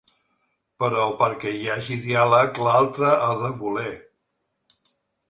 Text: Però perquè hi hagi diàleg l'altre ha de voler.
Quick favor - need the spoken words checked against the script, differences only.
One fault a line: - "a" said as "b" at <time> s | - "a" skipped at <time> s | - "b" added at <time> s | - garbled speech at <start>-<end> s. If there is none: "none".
none